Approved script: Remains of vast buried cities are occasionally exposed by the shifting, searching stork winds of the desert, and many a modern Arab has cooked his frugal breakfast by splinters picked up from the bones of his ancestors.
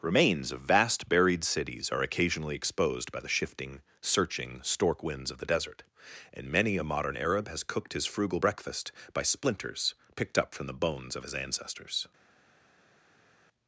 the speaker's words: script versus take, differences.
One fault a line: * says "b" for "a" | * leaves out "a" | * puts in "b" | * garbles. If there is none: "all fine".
all fine